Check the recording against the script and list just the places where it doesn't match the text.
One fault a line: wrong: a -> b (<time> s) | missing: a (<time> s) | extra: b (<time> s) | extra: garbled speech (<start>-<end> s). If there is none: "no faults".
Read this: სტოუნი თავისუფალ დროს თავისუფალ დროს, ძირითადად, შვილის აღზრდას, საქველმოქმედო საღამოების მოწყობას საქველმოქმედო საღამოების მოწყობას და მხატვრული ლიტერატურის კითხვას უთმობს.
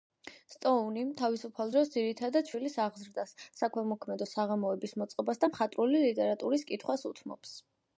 missing: თავისუფალ დროს (1.9 s)
missing: საქველმოქმედო საღამოების მოწყობას (5.4 s)